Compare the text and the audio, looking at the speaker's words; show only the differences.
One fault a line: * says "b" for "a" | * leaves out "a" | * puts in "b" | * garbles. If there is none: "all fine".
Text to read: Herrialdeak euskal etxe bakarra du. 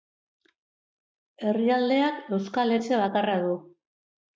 all fine